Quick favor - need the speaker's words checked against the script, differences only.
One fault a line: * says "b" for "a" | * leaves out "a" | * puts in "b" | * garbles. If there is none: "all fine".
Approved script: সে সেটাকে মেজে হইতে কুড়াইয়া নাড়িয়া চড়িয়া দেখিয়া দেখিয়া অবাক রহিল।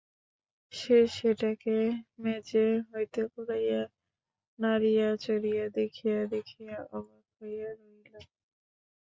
* puts in "হইয়া"